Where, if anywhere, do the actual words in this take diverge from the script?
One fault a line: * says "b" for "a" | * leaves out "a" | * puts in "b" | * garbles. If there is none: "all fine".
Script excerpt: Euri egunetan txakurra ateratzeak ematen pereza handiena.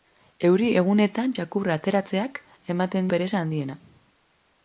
all fine